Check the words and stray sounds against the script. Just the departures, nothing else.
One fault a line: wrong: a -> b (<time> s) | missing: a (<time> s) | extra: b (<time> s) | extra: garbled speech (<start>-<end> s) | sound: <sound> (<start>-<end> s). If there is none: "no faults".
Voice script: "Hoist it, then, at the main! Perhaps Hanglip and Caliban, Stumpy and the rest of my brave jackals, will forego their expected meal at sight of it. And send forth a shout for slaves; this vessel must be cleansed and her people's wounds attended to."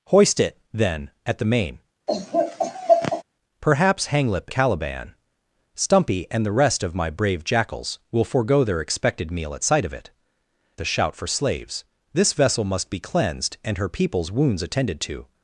sound: laugh (2.1-3.2 s)
missing: and (4.5 s)
missing: And send forth (10.1 s)